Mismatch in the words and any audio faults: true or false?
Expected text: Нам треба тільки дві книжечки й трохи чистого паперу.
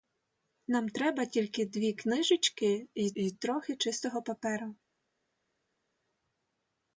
true